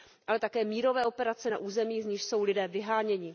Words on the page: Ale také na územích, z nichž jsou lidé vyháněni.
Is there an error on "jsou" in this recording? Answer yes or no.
no